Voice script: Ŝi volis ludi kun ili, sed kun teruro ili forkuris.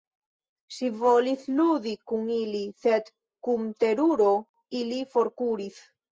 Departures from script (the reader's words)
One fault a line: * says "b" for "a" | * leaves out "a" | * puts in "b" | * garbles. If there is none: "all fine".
all fine